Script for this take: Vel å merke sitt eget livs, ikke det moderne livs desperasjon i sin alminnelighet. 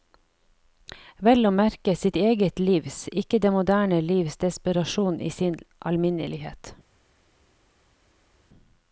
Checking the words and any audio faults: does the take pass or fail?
pass